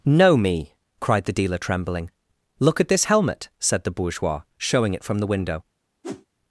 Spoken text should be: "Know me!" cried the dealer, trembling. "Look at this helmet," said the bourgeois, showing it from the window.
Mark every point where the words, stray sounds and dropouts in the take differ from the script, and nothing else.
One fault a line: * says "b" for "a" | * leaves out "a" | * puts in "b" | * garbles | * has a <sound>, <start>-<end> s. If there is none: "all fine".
* has a whoosh, 6.0-6.3 s